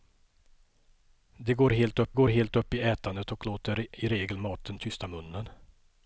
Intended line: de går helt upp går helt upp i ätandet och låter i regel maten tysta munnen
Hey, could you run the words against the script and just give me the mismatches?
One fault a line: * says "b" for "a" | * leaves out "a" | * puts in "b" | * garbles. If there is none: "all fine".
all fine